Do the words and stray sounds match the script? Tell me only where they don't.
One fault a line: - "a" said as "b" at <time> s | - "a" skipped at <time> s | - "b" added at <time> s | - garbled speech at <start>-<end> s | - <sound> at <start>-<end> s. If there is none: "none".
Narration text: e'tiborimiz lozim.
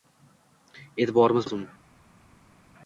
none